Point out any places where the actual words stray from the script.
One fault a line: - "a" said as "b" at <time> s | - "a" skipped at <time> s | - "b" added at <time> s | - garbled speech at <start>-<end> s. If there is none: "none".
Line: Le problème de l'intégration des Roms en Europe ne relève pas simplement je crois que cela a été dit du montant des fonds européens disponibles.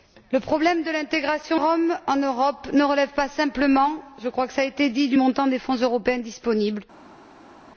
- "des" skipped at 1.6 s